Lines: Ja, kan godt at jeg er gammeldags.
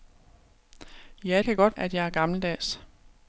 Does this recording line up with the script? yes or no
yes